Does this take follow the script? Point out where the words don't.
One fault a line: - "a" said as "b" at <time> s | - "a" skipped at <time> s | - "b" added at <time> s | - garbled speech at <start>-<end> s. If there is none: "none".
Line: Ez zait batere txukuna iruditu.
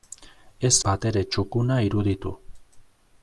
- "zait" skipped at 0.7 s